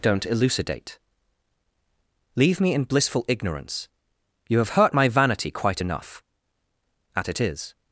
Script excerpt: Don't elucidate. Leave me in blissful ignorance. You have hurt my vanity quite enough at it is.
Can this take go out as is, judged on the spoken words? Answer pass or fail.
pass